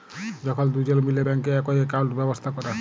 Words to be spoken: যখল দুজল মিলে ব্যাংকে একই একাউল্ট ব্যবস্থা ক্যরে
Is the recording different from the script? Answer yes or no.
no